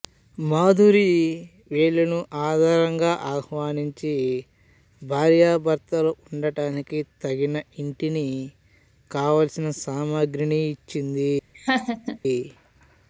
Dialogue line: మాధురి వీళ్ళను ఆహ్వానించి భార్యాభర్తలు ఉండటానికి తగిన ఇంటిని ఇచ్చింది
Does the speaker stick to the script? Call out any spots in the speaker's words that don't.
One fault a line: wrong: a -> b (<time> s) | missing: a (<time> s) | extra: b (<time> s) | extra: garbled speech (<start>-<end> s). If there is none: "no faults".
extra: ఆదరంగా (2.4 s)
extra: కావలసిన సామగ్రిని (9.1 s)